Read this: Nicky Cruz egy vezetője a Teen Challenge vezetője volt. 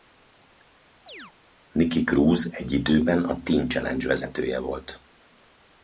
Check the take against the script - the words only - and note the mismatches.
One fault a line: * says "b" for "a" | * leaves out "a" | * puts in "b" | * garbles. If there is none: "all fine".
* says "időben" for "vezetője"